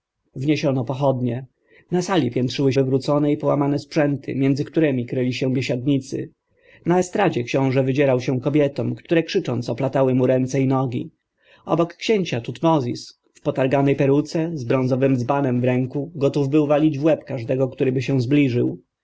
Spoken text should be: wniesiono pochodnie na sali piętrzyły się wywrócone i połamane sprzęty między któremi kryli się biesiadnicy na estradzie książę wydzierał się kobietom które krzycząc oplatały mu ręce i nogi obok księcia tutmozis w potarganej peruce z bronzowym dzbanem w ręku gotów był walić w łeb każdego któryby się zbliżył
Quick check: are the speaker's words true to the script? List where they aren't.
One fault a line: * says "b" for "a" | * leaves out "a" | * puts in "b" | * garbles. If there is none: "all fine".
* leaves out "się"